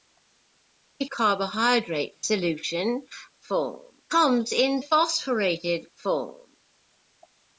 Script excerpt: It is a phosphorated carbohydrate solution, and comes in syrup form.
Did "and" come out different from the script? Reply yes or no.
yes